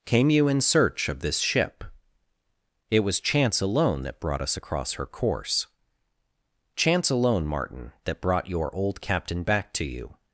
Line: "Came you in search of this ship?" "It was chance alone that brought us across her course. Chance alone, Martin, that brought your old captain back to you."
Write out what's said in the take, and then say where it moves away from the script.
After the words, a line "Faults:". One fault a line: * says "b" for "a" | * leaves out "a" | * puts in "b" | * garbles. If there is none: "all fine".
"Came you in search of this ship?" "It was chance alone that brought us across her course. Chance alone, Martin, that brought your old captain back to you."
Faults:
all fine